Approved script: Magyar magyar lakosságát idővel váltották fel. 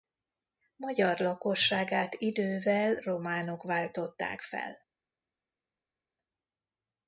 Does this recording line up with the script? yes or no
no